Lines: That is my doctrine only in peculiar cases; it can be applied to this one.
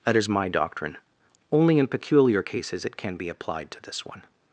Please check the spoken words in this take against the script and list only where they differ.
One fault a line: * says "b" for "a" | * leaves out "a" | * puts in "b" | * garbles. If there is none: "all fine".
all fine